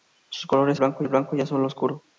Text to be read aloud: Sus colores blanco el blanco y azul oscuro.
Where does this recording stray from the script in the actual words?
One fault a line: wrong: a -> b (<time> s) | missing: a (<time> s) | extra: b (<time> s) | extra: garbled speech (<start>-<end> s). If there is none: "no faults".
no faults